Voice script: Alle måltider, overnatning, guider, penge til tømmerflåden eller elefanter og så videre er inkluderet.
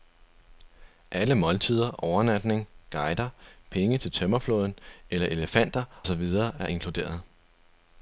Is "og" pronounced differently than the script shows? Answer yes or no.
yes